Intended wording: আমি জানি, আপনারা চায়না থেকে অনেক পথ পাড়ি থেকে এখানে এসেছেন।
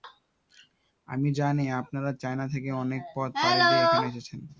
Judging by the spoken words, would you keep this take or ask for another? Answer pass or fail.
fail